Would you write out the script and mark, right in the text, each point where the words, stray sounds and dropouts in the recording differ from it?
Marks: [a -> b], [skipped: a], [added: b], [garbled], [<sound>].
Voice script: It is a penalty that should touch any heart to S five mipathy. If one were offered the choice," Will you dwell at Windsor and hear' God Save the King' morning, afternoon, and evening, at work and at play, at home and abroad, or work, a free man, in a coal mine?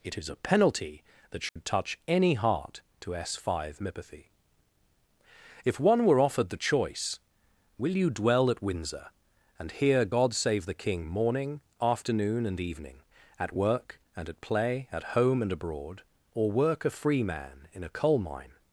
It is a penalty that should [dropout] touch any heart to S five mipathy. If one were offered the choice," Will you dwell at Windsor and hear' God Save the King' morning, afternoon, and evening, at work and at play, at home and abroad, or work, a free man, in a coal mine?